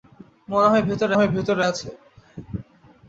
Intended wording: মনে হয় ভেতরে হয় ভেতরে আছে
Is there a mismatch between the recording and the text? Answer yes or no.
no